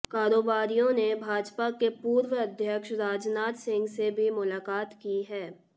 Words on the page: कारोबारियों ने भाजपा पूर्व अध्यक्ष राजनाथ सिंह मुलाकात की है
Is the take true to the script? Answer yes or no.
no